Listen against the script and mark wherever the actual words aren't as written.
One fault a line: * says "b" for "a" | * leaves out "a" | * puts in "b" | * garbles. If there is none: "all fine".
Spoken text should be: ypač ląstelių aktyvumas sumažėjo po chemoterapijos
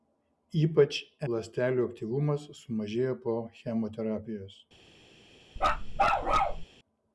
all fine